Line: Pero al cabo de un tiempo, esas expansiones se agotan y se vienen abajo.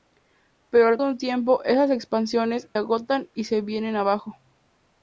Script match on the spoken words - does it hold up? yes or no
no